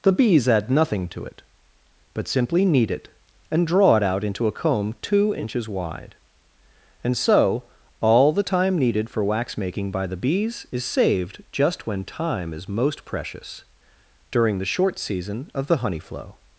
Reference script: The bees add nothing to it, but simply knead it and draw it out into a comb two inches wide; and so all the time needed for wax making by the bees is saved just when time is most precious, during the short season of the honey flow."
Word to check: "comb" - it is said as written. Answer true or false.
true